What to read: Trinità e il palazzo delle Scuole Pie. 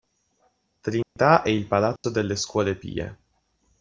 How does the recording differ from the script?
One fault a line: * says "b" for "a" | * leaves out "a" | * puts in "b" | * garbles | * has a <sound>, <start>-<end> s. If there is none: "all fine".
* has a dropout, 1.0-1.2 s
* has a dropout, 2.0-2.0 s